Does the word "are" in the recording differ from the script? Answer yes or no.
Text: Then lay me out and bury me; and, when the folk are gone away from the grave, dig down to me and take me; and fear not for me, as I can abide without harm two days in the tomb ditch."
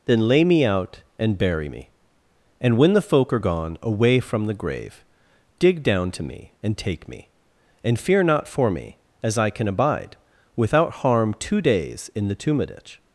no